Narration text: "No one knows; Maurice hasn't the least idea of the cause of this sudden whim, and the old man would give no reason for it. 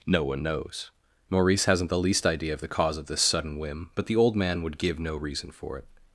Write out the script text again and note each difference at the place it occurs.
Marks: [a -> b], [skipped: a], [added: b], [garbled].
"No one knows; Maurice hasn't the least idea of the cause of this sudden whim, [and -> but] the old man would give no reason for it.